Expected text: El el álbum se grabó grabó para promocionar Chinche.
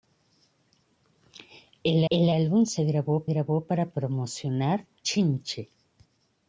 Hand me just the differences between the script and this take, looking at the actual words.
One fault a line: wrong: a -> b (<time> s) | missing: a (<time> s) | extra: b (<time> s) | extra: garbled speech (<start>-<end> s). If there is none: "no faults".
no faults